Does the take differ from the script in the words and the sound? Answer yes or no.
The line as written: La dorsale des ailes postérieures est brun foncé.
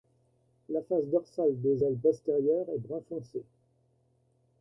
yes